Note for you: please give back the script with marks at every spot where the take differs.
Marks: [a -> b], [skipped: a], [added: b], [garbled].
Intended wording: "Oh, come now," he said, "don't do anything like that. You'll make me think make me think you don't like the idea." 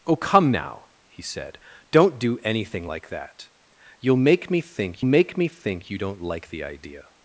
"Oh, come now," he said, "don't do anything like that. You'll make me think make me think you don't like the idea."